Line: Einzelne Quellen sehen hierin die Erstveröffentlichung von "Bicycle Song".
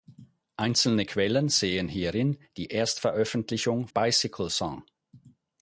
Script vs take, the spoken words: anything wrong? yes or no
yes